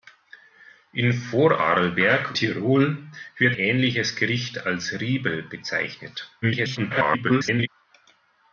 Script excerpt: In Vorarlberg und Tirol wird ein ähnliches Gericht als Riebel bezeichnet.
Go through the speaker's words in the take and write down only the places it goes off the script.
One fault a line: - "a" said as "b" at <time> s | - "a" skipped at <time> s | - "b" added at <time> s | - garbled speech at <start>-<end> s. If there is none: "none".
- "und" skipped at 2.4 s
- "ein" skipped at 3.6 s
- garbled speech at 6.4-7.7 s